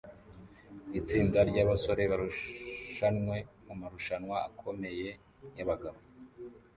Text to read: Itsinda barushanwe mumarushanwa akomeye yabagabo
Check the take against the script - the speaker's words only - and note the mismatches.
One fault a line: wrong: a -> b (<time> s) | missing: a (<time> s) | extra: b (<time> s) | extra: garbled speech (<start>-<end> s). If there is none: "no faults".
extra: ryabasore (1.5 s)